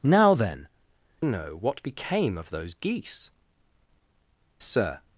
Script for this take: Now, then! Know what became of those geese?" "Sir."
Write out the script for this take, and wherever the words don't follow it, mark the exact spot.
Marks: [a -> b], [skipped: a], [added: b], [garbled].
Now, then! Know what became of those geese?" "Sir."